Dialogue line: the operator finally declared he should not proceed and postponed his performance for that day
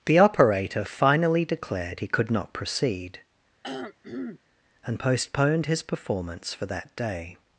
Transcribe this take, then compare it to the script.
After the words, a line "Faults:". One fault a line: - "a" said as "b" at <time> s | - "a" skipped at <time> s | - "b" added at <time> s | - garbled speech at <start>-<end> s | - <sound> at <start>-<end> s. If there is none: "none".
the operator finally declared he could not proceed and postponed his performance for that day
Faults:
- "should" said as "could" at 2.1 s
- throat clearing at 3.6-4.4 s